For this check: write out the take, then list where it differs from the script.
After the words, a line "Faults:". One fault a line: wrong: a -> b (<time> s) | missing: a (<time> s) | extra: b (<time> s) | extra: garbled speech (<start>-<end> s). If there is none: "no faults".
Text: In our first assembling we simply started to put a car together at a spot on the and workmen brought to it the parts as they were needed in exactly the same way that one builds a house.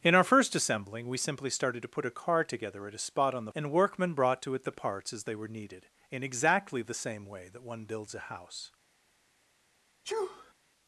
In our first assembling we simply started to put a car together at a spot on the and workmen brought to it the parts as they were needed in exactly the same way that one builds a house.
Faults:
no faults